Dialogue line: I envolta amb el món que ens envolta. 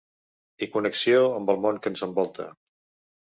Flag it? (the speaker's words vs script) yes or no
yes